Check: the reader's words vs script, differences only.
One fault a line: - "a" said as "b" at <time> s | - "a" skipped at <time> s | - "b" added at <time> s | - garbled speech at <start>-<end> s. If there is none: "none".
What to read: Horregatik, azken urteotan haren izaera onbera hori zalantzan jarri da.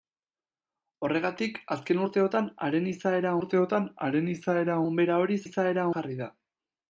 - "urteotan haren izaera" added at 3.4 s
- "zalantzan" said as "izaera" at 5.4 s